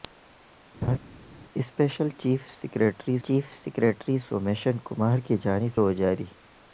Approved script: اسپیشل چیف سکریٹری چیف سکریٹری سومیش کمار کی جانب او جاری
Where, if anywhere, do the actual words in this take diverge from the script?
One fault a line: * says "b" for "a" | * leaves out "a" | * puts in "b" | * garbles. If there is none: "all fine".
all fine